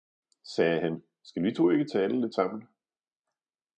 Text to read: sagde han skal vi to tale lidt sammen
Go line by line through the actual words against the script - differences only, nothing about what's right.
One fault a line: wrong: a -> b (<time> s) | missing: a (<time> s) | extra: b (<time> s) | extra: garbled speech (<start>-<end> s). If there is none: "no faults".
extra: ikke (1.7 s)